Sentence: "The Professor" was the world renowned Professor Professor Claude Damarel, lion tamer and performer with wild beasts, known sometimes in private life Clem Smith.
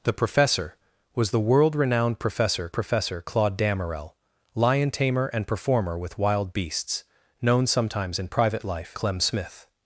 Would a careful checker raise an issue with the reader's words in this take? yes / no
no